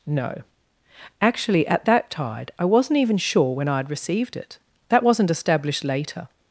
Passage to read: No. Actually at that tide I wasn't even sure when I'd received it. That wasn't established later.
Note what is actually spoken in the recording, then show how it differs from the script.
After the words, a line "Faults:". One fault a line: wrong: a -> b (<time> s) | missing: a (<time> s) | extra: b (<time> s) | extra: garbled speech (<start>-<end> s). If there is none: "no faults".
No. Actually at that tide I wasn't even sure when I'd received it. That wasn't established later.
Faults:
no faults